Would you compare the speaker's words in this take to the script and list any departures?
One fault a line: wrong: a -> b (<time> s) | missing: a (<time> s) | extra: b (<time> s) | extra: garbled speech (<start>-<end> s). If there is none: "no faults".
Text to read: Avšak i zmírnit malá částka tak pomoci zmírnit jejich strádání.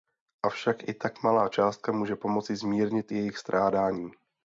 wrong: zmírnit -> tak (0.9 s)
wrong: tak -> může (1.9 s)